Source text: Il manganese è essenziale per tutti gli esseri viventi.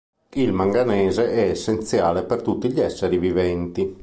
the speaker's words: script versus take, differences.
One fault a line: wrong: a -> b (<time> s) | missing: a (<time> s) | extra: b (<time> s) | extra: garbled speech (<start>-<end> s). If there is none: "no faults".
no faults